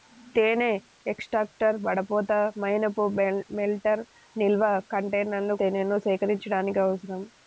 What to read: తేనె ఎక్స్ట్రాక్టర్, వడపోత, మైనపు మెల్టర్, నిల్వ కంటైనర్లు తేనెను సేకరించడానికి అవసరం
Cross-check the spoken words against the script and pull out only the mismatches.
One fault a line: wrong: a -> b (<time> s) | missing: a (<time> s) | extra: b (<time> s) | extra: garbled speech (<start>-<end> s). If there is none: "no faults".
no faults